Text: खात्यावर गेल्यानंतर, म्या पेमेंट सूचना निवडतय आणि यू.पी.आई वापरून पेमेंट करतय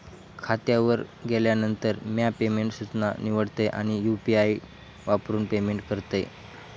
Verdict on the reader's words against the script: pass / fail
pass